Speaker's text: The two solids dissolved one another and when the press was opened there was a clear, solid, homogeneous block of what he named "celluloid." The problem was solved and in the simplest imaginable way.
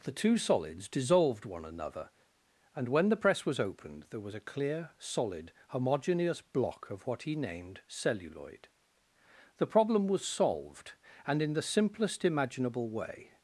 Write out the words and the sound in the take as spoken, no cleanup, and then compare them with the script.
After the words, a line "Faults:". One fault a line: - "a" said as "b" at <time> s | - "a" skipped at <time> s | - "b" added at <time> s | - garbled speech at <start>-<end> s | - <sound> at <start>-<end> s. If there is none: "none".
The two solids dissolved one another and when the press was opened there was a clear, solid, homogeneous block of what he named "celluloid." The problem was solved and in the simplest imaginable way.
Faults:
none